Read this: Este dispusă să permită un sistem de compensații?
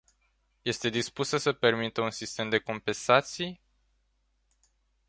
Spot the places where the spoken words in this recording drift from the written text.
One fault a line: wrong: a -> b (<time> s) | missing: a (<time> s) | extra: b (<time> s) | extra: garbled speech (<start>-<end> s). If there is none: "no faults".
no faults